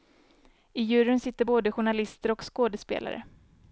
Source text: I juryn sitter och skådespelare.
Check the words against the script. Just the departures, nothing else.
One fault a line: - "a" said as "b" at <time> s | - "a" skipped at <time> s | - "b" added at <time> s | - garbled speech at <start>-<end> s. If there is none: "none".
- "både journalister" added at 1.4 s